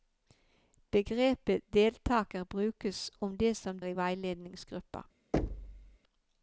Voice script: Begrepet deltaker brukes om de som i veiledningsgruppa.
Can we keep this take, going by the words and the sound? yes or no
no